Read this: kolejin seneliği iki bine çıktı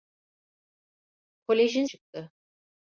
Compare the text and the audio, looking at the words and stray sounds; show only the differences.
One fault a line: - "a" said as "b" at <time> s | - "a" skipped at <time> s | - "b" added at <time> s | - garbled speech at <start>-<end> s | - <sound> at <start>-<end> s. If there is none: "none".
- "seneliği iki bine" skipped at 1.9 s